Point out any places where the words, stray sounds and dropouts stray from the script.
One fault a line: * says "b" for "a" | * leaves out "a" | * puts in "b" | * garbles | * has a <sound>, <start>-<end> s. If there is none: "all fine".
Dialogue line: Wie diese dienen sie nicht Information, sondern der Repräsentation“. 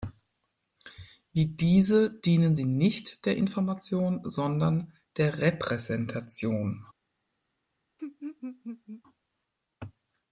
* puts in "der"
* has a laugh, 8.0-9.0 s